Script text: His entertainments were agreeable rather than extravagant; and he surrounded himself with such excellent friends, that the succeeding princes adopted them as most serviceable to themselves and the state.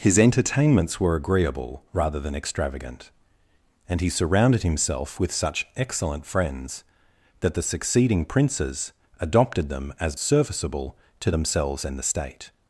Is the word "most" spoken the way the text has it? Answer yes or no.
no